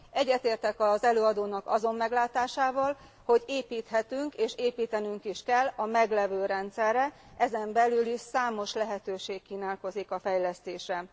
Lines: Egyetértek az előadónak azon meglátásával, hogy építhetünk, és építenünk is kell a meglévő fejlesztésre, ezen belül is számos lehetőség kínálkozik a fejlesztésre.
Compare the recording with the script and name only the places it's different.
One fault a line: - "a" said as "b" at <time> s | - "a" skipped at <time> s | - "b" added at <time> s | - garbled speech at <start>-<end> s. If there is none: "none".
- "fejlesztésre" said as "rendszerre" at 6.5 s